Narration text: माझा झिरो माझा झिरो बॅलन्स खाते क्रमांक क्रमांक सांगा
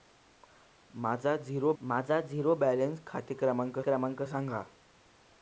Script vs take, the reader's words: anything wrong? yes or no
no